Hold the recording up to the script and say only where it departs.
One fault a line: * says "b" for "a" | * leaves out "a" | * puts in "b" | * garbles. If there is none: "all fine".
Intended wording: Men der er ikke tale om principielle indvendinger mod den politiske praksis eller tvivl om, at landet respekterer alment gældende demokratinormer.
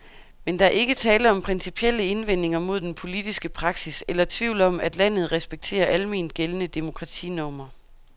all fine